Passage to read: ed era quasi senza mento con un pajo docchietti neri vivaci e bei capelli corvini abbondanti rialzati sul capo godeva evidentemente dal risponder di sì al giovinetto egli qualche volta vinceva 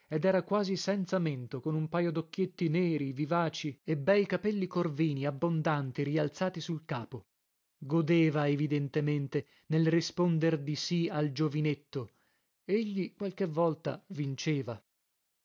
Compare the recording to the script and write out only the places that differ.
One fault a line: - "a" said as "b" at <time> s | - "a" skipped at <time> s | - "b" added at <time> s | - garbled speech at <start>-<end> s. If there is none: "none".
- "dal" said as "nel" at 9.7 s